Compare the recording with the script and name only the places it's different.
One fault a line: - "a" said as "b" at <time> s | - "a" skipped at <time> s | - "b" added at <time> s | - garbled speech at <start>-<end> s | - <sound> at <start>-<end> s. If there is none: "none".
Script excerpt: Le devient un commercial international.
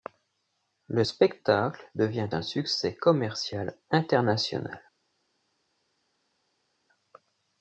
- "spectacle" added at 1.0 s
- "succès" added at 2.4 s